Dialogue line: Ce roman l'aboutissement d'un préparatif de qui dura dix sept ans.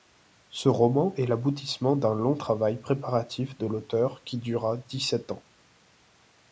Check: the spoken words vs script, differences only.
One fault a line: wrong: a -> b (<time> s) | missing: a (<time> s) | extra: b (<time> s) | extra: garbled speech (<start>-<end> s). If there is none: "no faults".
extra: est (1.1 s)
extra: long travail (2.1 s)
extra: l'auteur (3.7 s)